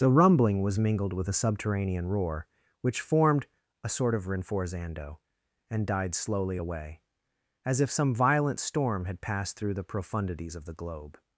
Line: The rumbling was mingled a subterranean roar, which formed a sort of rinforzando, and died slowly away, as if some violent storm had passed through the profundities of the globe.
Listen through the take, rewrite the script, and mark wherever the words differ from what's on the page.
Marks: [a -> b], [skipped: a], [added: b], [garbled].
The rumbling was mingled [added: with] a subterranean roar, which formed a sort of rinforzando, and died slowly away, as if some violent storm had passed through the profundities of the globe.